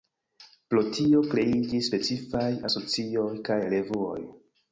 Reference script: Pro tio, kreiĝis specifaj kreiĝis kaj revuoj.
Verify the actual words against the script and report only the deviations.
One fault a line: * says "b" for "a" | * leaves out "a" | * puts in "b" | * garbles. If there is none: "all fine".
* says "asocioj" for "kreiĝis"